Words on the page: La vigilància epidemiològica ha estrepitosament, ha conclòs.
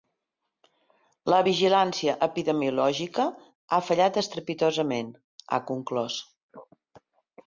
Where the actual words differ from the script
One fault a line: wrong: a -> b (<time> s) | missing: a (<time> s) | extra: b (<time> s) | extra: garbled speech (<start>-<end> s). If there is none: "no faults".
extra: fallat (3.9 s)